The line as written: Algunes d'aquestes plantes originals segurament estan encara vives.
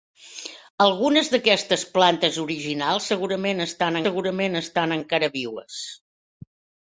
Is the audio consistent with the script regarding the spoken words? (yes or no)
no